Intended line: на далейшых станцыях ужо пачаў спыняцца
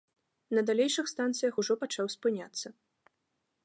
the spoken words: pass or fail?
pass